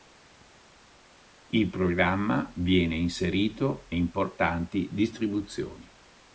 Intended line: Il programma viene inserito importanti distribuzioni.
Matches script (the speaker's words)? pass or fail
pass